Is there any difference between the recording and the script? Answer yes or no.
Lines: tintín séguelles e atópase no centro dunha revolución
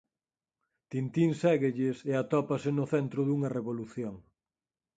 no